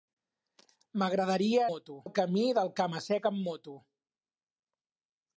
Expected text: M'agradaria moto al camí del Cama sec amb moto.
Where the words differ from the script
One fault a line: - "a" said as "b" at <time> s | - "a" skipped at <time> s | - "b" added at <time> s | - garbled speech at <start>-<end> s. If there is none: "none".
none